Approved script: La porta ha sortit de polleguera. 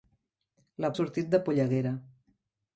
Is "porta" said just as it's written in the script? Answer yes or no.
no